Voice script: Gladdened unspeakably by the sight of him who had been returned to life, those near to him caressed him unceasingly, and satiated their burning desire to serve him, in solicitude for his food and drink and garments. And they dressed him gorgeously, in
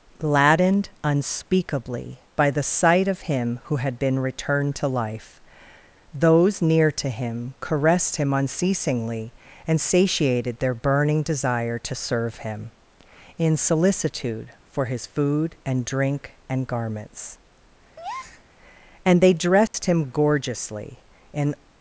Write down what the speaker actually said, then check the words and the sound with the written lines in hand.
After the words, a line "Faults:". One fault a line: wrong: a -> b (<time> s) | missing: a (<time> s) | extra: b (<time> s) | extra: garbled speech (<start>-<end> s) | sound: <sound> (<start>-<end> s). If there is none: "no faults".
Gladdened unspeakably by the sight of him who had been returned to life, those near to him caressed him unceasingly, and satiated their burning desire to serve him, in solicitude for his food and drink and garments. And they dressed him gorgeously, in
Faults:
sound: breath (18.0-18.4 s)
sound: dropout (19.7-19.7 s)